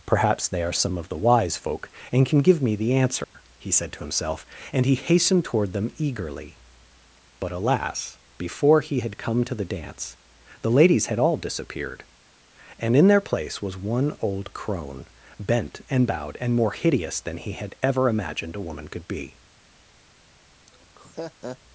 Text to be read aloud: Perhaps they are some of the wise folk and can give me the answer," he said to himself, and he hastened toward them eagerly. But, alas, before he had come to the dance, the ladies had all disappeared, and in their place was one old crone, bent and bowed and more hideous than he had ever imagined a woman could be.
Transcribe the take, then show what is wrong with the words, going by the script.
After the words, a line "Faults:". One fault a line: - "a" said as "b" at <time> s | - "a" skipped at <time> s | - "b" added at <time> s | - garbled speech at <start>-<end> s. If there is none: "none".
Perhaps they are some of the wise folk and can give me the answer," he said to himself, and he hastened toward them eagerly. But, alas, before he had come to the dance, the ladies had all disappeared, and in their place was one old crone, bent and bowed and more hideous than he had ever imagined a woman could be.
Faults:
none